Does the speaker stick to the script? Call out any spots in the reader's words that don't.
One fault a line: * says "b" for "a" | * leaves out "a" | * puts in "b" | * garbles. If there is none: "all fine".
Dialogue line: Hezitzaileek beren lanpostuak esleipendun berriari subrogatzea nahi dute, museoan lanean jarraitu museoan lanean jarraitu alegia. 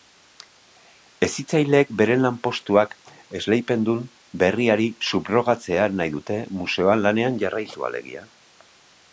* leaves out "museoan lanean jarraitu"